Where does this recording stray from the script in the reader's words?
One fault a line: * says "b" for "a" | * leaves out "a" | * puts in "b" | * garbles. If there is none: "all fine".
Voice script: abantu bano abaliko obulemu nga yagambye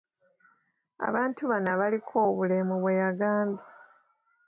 * says "bwe" for "nga"